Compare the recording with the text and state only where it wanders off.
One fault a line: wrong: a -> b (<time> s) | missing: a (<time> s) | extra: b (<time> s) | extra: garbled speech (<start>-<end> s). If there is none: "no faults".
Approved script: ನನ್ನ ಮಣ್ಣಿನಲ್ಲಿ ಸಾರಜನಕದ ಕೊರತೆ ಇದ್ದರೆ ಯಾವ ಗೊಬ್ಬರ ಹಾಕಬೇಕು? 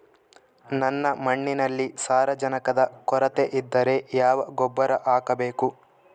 no faults